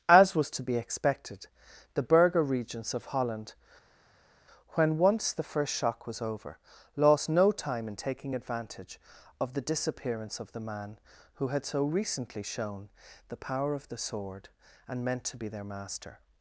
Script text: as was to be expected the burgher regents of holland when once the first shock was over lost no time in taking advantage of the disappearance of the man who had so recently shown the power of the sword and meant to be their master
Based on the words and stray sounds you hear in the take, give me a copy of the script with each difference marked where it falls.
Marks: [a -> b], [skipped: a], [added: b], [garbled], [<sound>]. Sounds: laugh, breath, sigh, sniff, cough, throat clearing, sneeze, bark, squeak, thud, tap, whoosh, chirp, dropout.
as was to be expected the burgher regents of holland when once the first shock was over lost no time in taking advantage of the disappearance of the man who had so recently shown the power of the sword and meant to be their master